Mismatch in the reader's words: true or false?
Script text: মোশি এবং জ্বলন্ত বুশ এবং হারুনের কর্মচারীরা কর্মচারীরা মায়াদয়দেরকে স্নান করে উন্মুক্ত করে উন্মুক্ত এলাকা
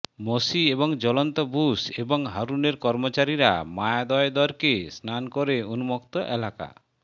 true